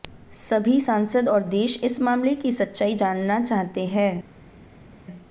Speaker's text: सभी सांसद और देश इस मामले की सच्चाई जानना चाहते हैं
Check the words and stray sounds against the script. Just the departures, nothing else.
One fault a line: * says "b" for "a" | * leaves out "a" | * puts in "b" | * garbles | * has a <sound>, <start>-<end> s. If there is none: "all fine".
all fine